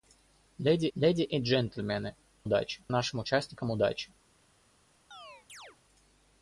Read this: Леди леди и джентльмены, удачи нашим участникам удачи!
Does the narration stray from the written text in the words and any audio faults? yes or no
yes